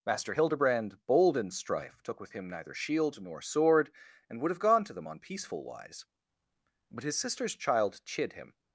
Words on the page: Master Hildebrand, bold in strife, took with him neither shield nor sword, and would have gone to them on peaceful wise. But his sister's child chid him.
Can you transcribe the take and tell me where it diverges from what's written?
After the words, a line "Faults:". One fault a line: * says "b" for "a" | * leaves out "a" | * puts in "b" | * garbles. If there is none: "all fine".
Master Hildebrand, bold in strife, took with him neither shield nor sword, and would have gone to them on peaceful wise. But his sister's child chid him.
Faults:
all fine